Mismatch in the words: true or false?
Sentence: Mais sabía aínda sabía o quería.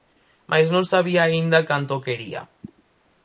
true